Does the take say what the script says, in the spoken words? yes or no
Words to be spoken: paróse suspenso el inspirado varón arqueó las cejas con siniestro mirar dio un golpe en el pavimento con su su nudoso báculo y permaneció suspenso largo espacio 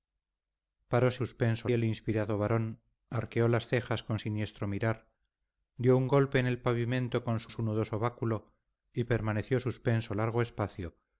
yes